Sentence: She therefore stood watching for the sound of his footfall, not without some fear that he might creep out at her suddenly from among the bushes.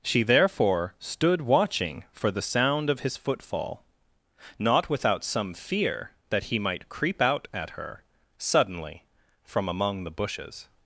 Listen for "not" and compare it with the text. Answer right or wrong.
right